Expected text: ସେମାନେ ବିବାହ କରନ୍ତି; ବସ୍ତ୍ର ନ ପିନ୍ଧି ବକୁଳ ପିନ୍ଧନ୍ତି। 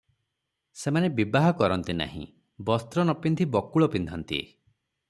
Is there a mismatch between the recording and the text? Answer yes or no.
yes